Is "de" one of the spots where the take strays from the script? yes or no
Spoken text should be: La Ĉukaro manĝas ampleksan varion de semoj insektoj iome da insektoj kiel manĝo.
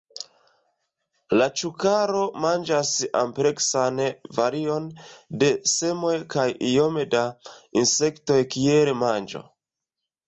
no